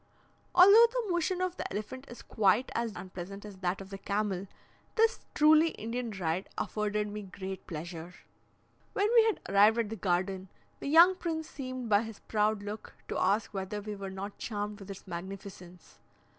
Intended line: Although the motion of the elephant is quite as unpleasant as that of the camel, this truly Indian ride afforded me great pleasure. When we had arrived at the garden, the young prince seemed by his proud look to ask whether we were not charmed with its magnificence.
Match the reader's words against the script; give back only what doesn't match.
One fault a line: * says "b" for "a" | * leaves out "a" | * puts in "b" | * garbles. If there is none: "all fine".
all fine